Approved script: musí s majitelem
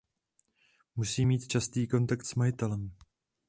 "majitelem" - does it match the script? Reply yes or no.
yes